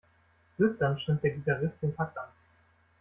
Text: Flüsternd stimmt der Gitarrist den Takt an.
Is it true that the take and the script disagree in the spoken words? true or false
false